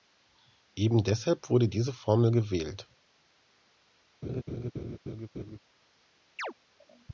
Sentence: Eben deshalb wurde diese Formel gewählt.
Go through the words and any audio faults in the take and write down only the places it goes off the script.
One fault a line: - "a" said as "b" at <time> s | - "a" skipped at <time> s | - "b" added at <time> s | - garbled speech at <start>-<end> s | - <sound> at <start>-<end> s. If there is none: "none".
- laugh at 4.2-5.6 s
- chirp at 6.4-6.5 s